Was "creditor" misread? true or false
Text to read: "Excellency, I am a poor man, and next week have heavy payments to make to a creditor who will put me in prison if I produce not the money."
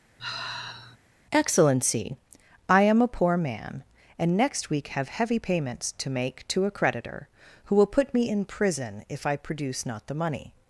false